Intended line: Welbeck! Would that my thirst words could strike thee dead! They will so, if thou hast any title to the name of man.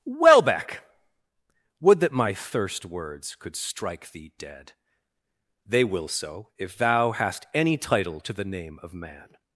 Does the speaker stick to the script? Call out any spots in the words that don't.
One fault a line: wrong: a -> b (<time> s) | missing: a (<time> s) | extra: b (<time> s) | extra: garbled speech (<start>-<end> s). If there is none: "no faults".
no faults